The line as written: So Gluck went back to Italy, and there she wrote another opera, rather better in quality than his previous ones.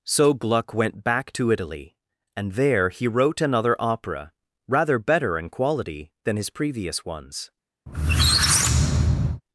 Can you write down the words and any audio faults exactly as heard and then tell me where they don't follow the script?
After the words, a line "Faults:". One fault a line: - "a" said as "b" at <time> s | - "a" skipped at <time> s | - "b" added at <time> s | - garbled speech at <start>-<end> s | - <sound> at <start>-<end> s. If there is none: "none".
So Gluck went back to Italy, and there he wrote another opera, rather better in quality than his previous ones.
Faults:
- "she" said as "he" at 2.9 s
- squeak at 7.9-9.4 s